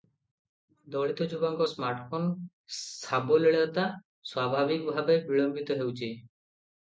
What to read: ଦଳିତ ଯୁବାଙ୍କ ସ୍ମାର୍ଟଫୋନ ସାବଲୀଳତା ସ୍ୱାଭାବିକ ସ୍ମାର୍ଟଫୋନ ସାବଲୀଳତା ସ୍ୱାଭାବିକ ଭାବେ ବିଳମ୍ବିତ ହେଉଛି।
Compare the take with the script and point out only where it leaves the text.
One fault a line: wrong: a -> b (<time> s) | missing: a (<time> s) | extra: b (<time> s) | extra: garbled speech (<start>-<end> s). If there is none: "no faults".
missing: ସ୍ମାର୍ଟଫୋନ ସାବଲୀଳତା ସ୍ୱାଭାବିକ (4.9 s)